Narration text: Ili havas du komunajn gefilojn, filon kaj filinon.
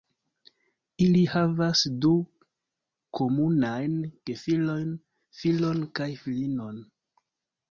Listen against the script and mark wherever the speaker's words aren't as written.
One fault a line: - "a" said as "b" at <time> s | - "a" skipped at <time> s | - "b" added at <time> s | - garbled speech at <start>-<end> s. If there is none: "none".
none